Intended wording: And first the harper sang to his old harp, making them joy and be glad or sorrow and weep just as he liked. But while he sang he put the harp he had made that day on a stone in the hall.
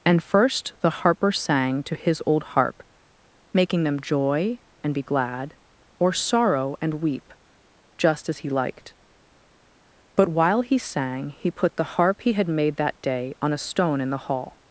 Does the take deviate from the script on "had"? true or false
false